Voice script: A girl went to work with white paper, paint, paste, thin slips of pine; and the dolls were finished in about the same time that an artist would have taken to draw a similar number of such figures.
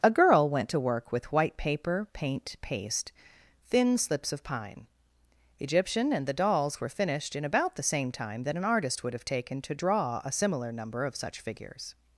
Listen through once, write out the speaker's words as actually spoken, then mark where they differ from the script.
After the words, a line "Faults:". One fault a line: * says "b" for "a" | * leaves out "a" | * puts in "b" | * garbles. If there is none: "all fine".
A girl went to work with white paper, paint, paste, thin slips of pine; egyptian and the dolls were finished in about the same time that an artist would have taken to draw a similar number of such figures.
Faults:
* puts in "egyptian"